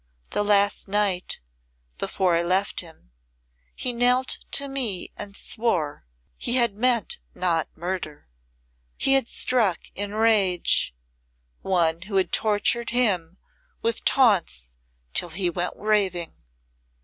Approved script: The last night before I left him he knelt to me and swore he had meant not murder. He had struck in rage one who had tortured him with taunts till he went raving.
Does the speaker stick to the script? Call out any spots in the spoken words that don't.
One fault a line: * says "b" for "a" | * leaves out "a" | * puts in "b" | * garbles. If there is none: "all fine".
all fine